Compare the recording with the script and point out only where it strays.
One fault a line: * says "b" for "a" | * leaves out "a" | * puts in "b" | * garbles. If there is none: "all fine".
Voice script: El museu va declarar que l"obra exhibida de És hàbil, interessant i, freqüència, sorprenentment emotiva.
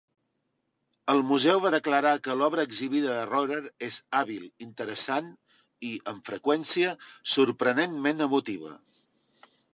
* puts in "Rohrer"
* puts in "amb"